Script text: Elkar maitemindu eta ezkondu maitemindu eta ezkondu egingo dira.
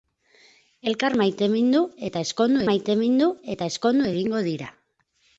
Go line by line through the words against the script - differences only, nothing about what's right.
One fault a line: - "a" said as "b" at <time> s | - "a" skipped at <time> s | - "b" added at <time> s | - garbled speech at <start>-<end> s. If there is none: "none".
none